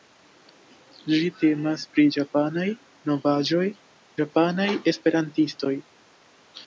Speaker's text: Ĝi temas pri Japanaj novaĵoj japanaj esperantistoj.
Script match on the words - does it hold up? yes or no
yes